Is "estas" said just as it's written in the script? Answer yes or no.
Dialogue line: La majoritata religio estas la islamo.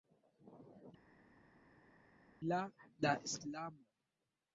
no